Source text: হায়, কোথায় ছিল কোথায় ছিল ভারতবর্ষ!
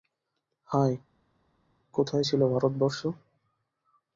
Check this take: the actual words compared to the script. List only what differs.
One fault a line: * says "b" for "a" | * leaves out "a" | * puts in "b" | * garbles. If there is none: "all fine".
* leaves out "কোথায় ছিল"